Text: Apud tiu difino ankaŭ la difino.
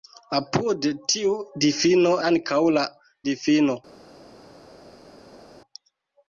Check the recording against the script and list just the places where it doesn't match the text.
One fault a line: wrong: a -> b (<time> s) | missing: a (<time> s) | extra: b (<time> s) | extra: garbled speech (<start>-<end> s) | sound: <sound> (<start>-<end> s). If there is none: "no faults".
no faults